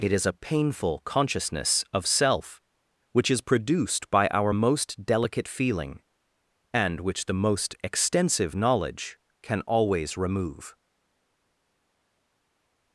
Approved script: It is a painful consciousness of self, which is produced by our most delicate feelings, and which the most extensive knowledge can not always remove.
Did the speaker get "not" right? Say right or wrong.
wrong